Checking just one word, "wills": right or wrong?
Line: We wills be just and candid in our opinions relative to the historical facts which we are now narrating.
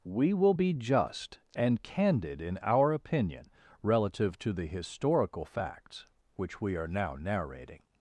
wrong